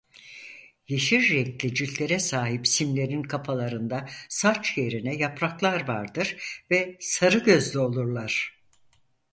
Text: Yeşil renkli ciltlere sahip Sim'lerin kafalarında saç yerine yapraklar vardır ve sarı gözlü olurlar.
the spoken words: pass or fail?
pass